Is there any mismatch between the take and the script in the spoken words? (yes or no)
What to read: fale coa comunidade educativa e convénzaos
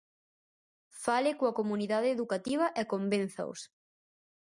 no